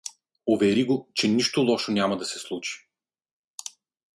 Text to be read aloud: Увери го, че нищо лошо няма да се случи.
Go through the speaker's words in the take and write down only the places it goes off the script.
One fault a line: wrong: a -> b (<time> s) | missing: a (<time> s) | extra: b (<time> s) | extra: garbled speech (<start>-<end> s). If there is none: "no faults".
no faults